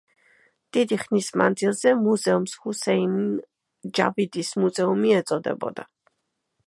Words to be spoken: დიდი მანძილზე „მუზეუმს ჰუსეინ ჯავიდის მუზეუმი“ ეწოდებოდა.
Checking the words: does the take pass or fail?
fail